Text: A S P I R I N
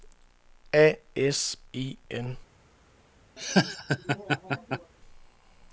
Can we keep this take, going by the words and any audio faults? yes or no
no